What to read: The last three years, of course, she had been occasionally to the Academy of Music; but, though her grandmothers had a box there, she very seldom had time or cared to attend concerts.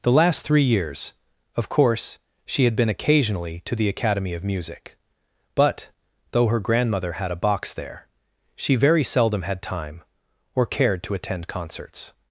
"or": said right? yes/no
yes